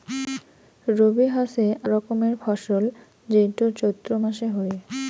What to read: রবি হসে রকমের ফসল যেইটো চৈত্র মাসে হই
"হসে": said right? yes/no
yes